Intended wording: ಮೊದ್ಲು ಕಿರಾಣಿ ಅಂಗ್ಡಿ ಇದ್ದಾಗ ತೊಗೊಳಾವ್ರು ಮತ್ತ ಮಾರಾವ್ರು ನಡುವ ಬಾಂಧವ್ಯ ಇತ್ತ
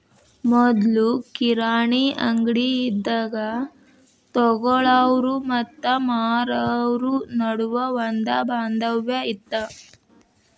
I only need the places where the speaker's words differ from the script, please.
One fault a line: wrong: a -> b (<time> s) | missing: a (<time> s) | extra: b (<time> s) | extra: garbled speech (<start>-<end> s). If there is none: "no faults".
extra: ಒಂದ (8.0 s)